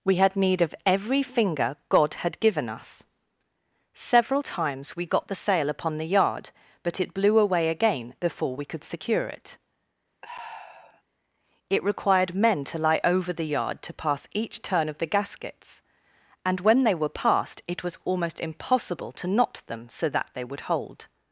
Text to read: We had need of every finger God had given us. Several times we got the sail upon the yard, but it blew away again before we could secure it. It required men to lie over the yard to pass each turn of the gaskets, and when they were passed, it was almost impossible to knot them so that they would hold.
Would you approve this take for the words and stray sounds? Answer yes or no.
no